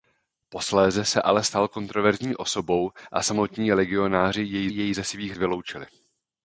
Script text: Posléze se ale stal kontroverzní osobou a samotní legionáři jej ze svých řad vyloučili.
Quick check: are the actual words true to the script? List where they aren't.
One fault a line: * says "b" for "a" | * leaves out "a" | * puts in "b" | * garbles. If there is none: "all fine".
* puts in "jej"
* leaves out "řad"